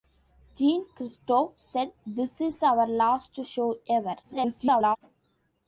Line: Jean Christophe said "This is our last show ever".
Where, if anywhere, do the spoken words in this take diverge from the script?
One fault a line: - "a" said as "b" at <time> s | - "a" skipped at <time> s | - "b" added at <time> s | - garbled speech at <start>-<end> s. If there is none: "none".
- garbled speech at 4.2-5.0 s